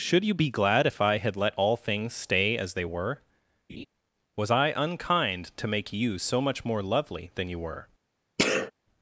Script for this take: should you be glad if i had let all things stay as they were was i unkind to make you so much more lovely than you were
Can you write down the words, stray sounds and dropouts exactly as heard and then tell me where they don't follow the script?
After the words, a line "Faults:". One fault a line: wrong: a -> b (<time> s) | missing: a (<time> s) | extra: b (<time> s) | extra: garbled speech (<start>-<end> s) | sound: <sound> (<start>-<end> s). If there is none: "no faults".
should you be glad if i had let all things stay as they were was i unkind to make you so much more lovely than you were
Faults:
sound: laugh (3.7-3.9 s)
sound: sneeze (8.4-8.7 s)